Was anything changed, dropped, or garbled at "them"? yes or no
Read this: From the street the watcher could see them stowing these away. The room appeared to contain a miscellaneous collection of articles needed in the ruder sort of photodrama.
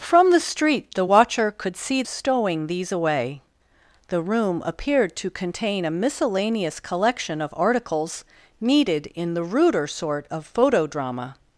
yes